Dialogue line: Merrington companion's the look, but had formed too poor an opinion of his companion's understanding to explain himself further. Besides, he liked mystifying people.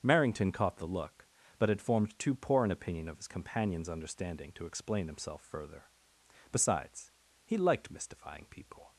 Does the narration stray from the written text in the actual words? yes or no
yes